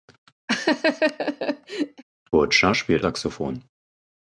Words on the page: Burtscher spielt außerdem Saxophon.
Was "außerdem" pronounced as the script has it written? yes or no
no